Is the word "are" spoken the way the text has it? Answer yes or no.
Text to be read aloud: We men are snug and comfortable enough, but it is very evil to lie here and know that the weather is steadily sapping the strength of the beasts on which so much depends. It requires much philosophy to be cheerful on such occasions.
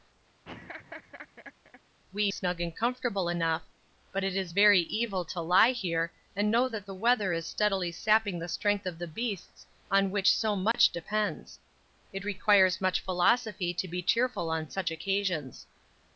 no